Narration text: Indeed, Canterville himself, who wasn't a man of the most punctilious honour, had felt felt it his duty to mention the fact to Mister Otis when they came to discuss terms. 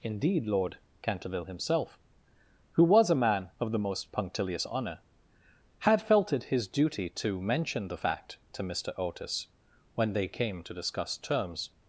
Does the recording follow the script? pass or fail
fail